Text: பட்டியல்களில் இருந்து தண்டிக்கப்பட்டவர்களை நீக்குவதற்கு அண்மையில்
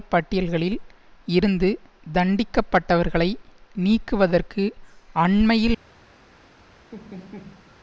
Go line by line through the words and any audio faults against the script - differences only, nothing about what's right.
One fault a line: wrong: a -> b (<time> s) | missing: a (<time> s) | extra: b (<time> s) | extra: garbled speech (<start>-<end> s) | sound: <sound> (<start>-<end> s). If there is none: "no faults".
sound: laugh (6.9-7.8 s)